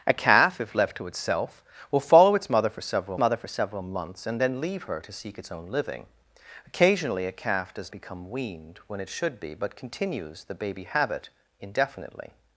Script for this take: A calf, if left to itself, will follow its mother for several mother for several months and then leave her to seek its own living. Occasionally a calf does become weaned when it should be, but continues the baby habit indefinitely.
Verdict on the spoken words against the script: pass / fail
pass